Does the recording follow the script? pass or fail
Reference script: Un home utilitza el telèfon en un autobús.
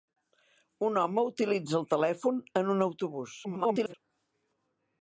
fail